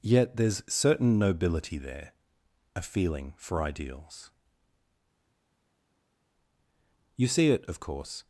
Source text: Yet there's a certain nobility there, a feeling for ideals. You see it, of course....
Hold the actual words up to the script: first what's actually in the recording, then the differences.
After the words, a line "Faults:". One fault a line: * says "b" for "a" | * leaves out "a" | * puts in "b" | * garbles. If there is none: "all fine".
Yet there's certain nobility there, a feeling for ideals. You see it, of course....
Faults:
* leaves out "a"